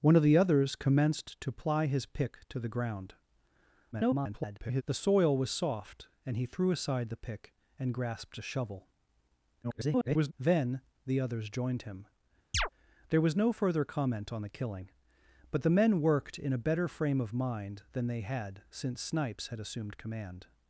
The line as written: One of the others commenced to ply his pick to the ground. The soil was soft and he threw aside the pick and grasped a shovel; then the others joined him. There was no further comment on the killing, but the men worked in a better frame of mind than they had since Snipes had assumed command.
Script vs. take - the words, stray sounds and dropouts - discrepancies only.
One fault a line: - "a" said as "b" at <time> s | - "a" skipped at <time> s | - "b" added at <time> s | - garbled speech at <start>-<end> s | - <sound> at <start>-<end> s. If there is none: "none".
- garbled speech at 3.9-4.8 s
- garbled speech at 9.6-10.3 s
- chirp at 12.5-12.7 s